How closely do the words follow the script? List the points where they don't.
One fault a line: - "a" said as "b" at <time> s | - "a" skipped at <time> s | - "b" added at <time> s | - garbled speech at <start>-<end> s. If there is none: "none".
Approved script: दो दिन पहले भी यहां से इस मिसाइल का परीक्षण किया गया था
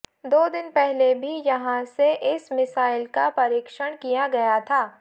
none